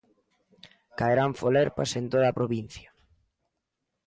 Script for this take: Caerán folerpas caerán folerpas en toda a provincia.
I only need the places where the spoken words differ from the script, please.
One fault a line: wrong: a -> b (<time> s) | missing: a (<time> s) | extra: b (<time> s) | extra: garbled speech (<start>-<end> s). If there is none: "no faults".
missing: caerán folerpas (1.9 s)